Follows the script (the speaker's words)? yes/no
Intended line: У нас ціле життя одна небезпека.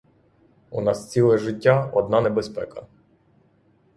yes